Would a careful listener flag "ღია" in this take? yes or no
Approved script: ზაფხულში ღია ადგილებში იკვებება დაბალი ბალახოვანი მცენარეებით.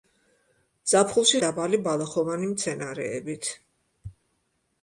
yes